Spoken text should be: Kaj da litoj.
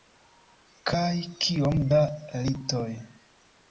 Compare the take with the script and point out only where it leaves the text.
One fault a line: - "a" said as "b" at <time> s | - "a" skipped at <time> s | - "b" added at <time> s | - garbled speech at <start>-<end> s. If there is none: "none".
- "kiom" added at 1.4 s